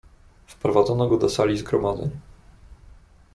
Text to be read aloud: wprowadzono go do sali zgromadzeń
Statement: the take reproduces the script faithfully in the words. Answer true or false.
true